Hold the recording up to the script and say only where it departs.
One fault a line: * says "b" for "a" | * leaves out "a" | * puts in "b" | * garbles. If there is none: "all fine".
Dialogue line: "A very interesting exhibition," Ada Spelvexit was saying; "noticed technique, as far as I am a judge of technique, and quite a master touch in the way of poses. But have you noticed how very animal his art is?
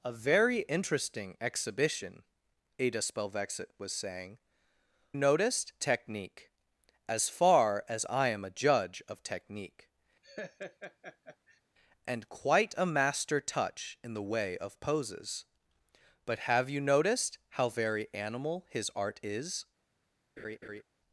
all fine